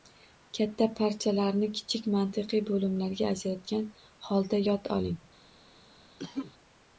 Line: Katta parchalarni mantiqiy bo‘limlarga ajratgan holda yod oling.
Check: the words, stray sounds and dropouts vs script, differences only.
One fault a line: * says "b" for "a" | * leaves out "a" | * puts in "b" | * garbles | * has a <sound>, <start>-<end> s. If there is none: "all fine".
* puts in "kichik"
* has a cough, 6.2-6.5 s